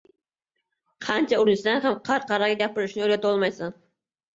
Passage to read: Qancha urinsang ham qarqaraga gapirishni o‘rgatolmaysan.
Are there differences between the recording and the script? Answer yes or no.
no